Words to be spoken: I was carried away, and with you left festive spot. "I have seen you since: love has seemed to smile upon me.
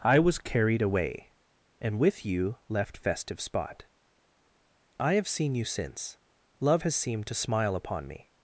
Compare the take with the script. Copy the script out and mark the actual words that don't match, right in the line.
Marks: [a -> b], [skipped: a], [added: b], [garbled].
I was carried away, and with you left festive spot. "I have seen you since: love has seemed to smile upon me.